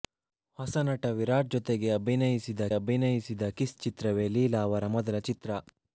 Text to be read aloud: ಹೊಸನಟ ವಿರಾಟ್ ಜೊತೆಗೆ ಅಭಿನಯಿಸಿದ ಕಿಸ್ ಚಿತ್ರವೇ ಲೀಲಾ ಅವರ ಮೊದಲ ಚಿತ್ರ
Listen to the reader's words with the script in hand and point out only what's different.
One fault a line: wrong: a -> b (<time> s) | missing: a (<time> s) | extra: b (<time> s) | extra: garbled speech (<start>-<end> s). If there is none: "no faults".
extra: ಅಭಿನಯಿಸಿದ (2.7 s)